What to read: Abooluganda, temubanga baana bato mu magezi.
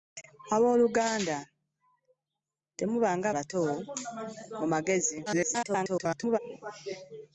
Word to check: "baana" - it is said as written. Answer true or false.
false